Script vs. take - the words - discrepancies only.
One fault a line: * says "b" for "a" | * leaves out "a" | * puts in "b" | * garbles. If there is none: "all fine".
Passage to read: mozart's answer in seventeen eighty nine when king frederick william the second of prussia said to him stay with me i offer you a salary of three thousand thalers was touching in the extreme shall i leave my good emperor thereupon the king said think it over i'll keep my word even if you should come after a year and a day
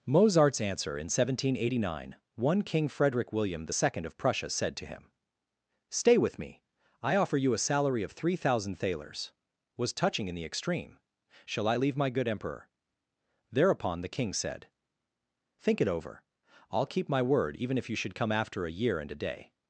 * says "one" for "when"